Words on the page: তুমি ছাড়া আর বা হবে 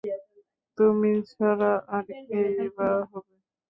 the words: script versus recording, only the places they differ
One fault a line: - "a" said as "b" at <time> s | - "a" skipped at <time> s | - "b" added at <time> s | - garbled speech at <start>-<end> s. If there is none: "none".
- "কে-ই" added at 2.3 s